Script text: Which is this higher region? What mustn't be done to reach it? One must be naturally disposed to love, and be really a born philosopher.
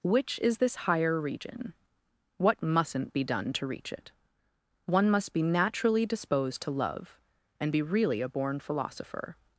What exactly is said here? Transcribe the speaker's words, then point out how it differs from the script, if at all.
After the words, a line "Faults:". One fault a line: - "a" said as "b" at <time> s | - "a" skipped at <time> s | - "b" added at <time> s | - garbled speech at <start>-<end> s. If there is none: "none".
Which is this higher region? What mustn't be done to reach it? One must be naturally disposed to love, and be really a born philosopher.
Faults:
none